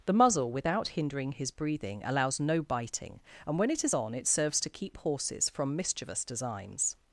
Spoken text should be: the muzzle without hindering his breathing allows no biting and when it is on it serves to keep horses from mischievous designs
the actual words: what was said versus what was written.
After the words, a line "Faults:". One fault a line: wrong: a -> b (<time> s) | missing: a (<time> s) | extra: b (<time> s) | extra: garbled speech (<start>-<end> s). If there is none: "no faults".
the muzzle without hindering his breathing allows no biting and when it is on it serves to keep horses from mischievous designs
Faults:
no faults